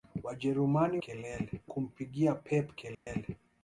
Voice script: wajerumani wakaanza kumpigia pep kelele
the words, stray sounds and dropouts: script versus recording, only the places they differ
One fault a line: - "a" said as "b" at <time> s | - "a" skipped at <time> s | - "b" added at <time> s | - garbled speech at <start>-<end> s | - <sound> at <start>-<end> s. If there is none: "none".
- "wakaanza" said as "kelele" at 1.0 s
- dropout at 2.9-3.1 s